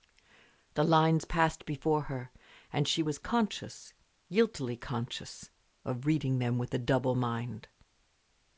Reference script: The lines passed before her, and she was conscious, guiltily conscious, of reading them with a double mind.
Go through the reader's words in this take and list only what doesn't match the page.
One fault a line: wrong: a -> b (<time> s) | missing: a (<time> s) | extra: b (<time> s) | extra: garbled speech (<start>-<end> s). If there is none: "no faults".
no faults